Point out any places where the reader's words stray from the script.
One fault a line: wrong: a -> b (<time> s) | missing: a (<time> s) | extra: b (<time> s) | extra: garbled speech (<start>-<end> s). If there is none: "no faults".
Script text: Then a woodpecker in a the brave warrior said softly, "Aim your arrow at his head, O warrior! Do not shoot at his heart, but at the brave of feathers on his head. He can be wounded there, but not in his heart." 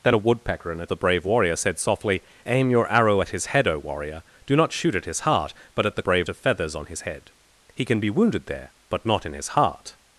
no faults